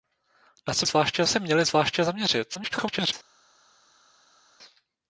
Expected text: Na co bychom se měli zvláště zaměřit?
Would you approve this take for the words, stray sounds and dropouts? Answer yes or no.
no